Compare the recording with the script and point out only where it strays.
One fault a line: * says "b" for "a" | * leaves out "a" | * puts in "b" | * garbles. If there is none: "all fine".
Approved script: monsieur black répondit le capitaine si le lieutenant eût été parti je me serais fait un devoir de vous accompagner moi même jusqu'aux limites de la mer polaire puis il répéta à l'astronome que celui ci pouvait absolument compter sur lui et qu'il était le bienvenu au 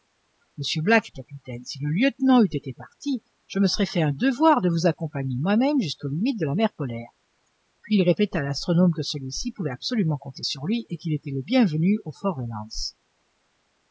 * leaves out "répondit"